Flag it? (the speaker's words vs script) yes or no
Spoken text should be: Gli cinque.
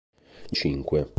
no